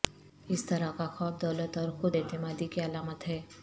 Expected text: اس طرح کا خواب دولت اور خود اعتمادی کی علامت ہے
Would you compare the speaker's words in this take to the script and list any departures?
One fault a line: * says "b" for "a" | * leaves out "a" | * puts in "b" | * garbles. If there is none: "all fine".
all fine